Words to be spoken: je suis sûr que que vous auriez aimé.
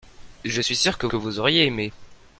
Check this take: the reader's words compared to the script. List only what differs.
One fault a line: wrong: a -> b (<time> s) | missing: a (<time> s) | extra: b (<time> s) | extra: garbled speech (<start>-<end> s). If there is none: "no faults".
no faults